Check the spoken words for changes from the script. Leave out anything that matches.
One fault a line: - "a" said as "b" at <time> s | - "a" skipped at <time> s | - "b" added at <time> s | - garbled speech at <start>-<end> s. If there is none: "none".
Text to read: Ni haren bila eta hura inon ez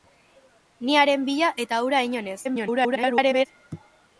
- garbled speech at 2.4-3.5 s